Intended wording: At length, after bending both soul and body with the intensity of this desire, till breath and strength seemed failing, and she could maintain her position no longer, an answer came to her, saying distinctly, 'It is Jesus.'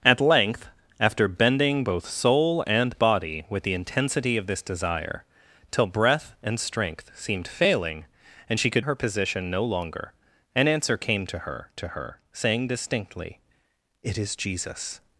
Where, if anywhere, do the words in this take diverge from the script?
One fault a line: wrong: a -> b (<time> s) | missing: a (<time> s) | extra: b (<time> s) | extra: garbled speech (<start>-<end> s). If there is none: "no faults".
missing: maintain (8.9 s)
extra: to her (11.8 s)